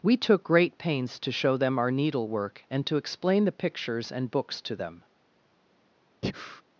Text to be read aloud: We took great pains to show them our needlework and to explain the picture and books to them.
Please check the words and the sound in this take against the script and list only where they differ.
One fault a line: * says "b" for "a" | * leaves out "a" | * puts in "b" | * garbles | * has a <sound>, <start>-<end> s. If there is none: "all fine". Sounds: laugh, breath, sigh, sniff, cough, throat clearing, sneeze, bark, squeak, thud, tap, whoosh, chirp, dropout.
* says "pictures" for "picture"
* has a breath, 6.2-6.6 s